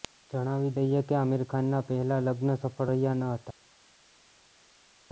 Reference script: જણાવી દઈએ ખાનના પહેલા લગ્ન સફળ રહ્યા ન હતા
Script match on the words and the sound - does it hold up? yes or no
no